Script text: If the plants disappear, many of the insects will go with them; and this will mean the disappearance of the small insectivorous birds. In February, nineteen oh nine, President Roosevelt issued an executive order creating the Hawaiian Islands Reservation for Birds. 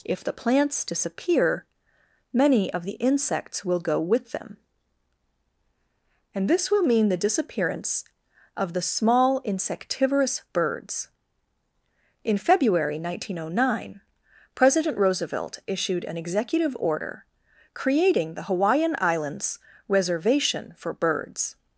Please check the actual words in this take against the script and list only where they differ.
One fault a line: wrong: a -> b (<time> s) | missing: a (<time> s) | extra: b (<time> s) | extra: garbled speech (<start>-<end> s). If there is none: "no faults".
no faults